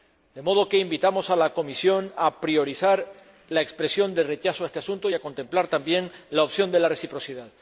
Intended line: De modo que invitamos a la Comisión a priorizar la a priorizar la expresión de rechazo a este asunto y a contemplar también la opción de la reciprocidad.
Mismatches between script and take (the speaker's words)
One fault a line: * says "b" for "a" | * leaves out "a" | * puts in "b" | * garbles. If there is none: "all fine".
* leaves out "a priorizar la"